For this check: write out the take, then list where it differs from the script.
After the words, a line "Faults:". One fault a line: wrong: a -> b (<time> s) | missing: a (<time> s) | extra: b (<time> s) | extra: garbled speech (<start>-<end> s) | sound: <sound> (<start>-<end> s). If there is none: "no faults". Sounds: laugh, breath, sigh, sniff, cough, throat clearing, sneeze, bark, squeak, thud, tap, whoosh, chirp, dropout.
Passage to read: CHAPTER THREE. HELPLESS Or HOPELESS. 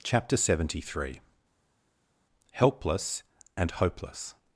CHAPTER SEVENTY THREE. HELPLESS AND HOPELESS.
Faults:
extra: SEVENTY (0.3 s)
wrong: Or -> AND (3.6 s)